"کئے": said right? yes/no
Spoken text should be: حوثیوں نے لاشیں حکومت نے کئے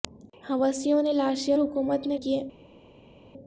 yes